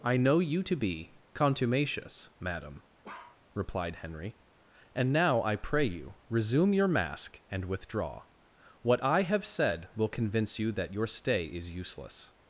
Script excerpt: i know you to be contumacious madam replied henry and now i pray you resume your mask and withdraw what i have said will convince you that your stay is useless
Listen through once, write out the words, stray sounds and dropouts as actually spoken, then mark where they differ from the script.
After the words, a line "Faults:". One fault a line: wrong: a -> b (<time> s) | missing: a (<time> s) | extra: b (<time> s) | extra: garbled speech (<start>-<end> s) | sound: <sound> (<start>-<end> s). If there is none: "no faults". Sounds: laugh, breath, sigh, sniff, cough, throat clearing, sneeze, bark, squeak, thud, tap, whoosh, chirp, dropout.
i know you to be contumacious madam replied henry and now i pray you resume your mask and withdraw what i have said will convince you that your stay is useless
Faults:
sound: bark (3.0-3.4 s)